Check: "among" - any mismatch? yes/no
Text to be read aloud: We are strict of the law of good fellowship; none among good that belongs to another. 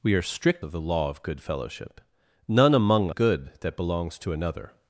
no